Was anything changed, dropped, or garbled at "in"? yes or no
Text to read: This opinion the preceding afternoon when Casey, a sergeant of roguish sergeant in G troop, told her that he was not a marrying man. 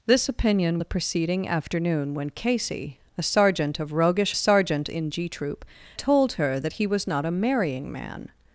no